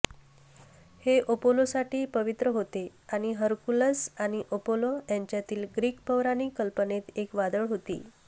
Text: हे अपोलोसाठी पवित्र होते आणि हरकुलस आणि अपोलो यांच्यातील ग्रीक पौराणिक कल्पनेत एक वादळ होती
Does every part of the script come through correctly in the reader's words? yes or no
yes